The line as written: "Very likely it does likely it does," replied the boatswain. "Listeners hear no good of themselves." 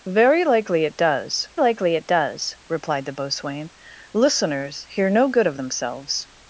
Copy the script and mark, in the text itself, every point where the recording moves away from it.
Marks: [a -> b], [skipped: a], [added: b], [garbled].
"Very likely it does likely it does," replied the boatswain. "Listeners hear no good of themselves."